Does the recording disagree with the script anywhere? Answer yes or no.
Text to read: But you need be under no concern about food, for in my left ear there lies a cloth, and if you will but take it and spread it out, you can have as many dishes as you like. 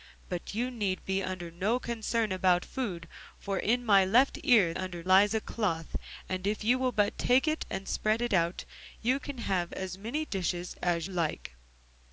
yes